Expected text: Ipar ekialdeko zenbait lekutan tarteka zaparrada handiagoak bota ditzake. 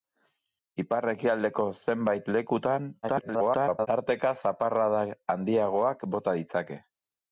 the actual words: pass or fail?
fail